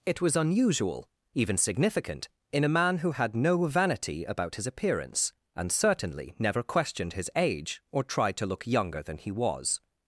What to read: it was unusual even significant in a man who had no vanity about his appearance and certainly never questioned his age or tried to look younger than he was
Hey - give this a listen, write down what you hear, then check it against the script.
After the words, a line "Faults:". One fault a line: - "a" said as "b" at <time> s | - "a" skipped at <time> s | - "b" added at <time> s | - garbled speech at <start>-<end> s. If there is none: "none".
it was unusual even significant in a man who had no vanity about his appearance and certainly never questioned his age or tried to look younger than he was
Faults:
none